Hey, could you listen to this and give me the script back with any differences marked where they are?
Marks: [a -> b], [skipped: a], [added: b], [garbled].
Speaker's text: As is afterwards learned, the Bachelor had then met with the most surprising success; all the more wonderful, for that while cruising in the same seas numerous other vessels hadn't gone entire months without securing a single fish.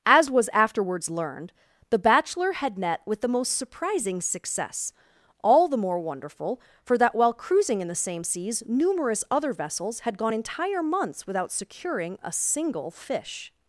As [is -> was] afterwards learned, the Bachelor had [skipped: then] met with the most surprising success; all the more wonderful, for that while cruising in the same seas numerous other vessels [hadn't -> had] gone entire months without securing a single fish.